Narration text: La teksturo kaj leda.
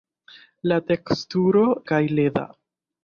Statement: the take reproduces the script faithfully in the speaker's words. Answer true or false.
true